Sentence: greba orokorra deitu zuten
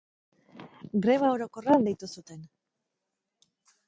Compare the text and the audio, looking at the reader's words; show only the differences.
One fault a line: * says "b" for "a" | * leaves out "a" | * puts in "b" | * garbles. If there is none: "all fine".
all fine